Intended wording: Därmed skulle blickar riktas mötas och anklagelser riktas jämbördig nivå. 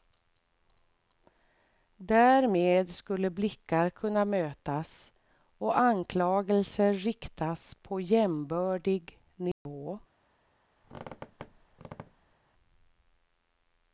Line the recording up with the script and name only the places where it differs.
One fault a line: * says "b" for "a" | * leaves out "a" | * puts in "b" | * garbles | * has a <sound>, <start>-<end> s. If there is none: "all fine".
* says "kunna" for "riktas"
* puts in "på"
* has a dropout, 9.5-9.7 s
* has a squeak, 10.8-12.3 s